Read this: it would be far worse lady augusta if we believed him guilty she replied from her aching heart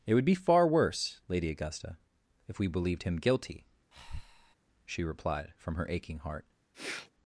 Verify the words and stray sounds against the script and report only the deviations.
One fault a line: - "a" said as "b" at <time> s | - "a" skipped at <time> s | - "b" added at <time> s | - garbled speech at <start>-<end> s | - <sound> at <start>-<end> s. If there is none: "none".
- breath at 3.9-4.6 s
- sniff at 6.7-7.1 s